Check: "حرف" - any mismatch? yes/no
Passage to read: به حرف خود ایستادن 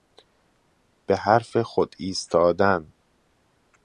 no